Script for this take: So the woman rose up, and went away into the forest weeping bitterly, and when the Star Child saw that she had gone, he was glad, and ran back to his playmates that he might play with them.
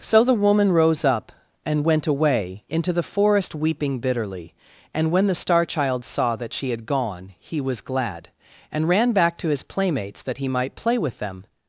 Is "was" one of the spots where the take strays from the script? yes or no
no